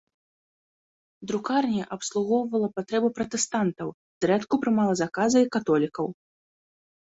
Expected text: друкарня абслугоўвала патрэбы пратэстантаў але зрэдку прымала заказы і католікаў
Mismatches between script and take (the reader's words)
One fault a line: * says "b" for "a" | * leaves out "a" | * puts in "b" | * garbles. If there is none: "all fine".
* leaves out "але"